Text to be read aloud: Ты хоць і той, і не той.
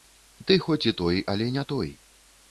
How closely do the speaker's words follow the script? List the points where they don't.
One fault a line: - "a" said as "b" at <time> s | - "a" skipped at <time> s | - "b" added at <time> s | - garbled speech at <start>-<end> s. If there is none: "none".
- "і" said as "але" at 1.3 s